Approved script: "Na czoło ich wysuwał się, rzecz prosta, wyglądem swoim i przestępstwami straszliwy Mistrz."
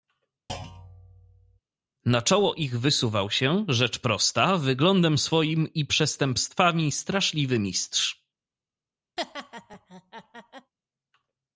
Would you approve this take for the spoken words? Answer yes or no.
yes